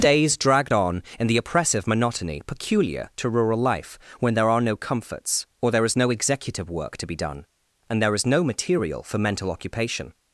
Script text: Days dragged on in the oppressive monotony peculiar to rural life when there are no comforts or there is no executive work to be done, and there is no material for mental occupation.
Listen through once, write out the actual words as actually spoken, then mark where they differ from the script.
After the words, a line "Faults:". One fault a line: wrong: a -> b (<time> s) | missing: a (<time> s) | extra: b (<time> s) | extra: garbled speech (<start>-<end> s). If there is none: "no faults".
Days dragged on in the oppressive monotony peculiar to rural life when there are no comforts or there is no executive work to be done, and there is no material for mental occupation.
Faults:
no faults